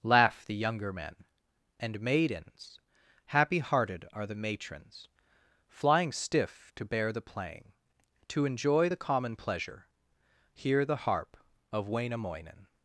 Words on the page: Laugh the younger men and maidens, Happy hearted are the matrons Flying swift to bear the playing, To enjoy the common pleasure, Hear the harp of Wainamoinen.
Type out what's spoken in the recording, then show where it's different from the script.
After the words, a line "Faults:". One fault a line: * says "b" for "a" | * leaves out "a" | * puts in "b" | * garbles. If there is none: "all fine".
Laugh the younger men and maidens, Happy hearted are the matrons Flying stiff to bear the playing, To enjoy the common pleasure, Hear the harp of Wainamoinen.
Faults:
* says "stiff" for "swift"